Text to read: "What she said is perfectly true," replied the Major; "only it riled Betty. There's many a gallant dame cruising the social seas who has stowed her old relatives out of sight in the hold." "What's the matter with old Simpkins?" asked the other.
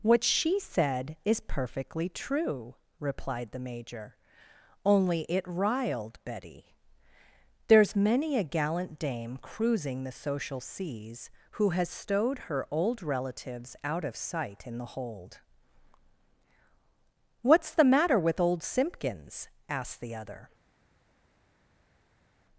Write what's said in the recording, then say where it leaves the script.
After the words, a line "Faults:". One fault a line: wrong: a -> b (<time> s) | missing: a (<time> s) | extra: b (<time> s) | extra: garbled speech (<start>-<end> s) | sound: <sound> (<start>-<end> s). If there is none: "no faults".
"What she said is perfectly true," replied the Major; "only it riled Betty. There's many a gallant dame cruising the social seas who has stowed her old relatives out of sight in the hold." "What's the matter with old Simpkins?" asked the other.
Faults:
no faults